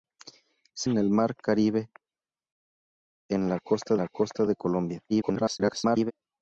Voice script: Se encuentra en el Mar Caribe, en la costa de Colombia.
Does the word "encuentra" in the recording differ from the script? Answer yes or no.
yes